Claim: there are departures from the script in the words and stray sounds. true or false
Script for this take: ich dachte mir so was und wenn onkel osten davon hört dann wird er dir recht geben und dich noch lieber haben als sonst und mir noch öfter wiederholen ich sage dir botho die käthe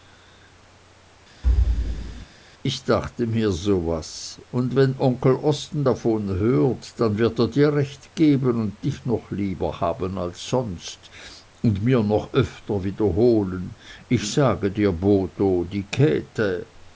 true